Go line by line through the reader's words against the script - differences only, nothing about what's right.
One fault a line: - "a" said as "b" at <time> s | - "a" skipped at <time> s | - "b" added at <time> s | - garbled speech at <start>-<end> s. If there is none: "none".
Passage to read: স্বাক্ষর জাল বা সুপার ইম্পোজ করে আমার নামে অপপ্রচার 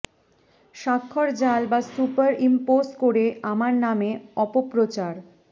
none